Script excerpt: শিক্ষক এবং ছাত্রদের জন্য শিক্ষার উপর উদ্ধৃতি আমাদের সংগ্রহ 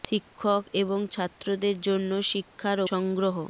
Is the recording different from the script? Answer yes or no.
yes